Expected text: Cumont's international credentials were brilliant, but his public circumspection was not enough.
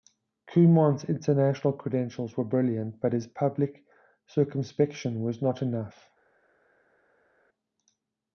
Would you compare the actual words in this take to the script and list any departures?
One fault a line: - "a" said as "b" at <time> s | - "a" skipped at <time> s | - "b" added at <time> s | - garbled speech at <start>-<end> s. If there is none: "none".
none